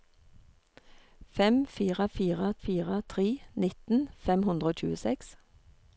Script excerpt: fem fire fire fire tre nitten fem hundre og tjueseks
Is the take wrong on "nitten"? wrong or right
right